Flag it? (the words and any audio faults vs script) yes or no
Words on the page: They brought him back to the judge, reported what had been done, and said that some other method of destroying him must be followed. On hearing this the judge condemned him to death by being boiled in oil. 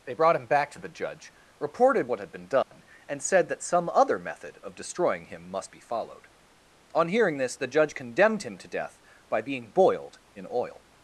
yes